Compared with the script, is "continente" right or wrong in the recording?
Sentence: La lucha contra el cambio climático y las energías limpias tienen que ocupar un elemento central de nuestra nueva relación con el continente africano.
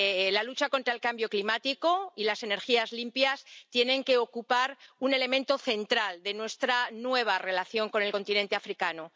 right